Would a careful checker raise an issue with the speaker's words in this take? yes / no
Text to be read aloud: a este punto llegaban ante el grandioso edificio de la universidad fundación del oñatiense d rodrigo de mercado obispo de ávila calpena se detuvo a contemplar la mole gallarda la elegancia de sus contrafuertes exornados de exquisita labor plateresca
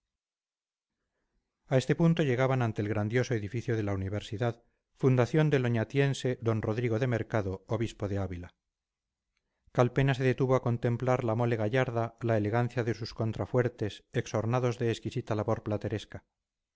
no